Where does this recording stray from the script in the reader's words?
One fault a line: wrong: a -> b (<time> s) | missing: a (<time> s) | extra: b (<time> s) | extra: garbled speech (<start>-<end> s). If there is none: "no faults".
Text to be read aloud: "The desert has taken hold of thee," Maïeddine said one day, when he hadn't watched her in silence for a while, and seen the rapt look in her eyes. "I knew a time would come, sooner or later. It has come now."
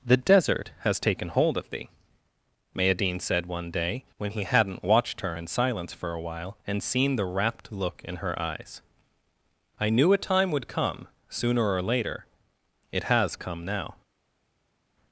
no faults